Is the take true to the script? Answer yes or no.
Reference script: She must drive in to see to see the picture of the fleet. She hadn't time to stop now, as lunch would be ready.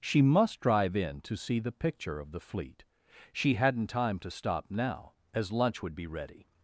no